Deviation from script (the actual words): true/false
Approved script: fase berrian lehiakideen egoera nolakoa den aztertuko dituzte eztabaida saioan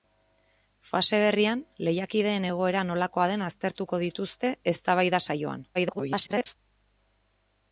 true